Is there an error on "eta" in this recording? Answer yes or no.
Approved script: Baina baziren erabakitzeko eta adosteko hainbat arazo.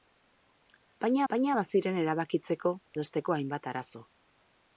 yes